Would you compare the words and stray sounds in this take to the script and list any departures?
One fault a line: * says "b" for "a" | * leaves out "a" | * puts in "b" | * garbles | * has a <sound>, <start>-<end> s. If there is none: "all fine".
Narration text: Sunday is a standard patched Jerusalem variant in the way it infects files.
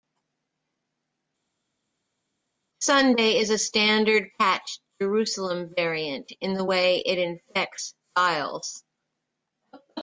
all fine